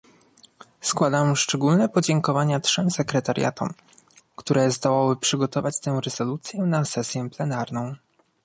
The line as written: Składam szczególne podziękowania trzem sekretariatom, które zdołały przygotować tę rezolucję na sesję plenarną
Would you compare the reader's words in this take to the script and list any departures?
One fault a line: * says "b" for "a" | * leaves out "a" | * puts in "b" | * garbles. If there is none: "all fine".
all fine